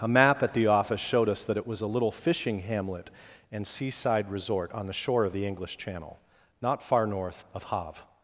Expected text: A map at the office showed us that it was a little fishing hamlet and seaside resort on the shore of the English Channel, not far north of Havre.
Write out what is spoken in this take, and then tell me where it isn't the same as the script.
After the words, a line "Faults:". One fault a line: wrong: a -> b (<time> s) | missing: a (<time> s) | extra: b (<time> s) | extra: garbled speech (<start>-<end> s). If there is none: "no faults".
A map at the office showed us that it was a little fishing hamlet and seaside resort on the shore of the English Channel, not far north of Havre.
Faults:
no faults